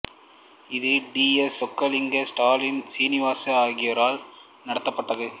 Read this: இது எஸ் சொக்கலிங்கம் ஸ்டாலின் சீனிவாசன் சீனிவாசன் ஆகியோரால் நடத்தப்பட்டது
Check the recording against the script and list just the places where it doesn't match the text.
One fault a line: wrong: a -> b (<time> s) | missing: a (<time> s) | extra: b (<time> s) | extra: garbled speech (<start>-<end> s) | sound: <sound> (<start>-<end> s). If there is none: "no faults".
extra: டி (1.1 s)
missing: சீனிவாசன் (3.6 s)